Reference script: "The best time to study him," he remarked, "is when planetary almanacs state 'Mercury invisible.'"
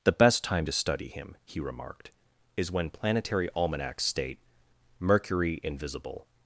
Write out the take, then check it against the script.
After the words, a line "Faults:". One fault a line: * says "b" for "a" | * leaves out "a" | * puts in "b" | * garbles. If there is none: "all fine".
"The best time to study him," he remarked, "is when planetary almanacs state 'Mercury invisible.'"
Faults:
all fine